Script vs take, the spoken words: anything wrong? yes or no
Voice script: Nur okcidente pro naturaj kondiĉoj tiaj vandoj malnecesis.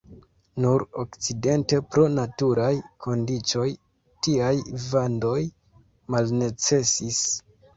no